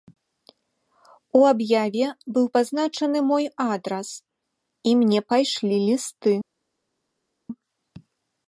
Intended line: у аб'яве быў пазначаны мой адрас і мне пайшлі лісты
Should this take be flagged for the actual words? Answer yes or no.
no